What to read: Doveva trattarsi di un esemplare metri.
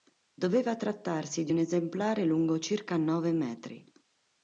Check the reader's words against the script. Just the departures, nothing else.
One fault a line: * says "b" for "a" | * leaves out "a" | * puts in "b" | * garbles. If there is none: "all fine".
* puts in "lungo circa nove"